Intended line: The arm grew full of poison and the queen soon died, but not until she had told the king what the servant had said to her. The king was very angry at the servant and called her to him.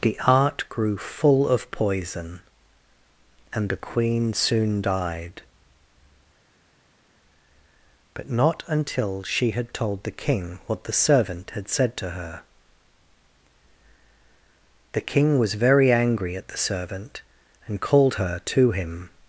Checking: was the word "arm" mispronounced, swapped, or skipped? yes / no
yes